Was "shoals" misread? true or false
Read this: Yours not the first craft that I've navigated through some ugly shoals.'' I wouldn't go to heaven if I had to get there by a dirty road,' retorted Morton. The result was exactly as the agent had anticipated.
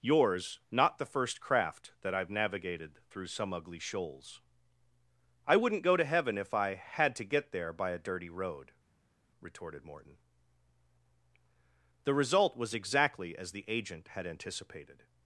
false